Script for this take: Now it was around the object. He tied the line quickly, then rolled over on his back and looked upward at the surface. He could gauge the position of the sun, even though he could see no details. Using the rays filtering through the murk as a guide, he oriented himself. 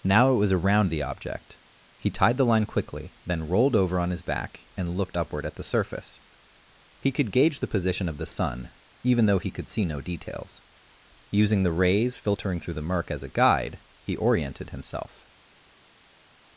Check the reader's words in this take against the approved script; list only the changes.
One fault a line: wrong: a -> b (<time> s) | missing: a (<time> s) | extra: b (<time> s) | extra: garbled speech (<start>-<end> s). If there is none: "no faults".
no faults